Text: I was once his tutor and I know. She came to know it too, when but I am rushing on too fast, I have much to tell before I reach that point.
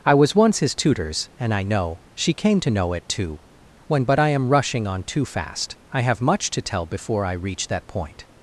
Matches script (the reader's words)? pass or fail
fail